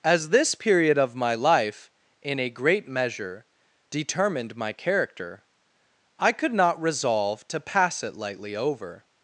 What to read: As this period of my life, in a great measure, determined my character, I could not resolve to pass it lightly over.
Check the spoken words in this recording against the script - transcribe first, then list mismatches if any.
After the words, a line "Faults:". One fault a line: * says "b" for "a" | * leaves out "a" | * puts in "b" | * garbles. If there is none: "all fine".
As this period of my life, in a great measure, determined my character, I could not resolve to pass it lightly over.
Faults:
all fine